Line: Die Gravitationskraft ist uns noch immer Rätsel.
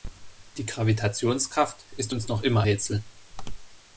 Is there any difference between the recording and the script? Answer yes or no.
no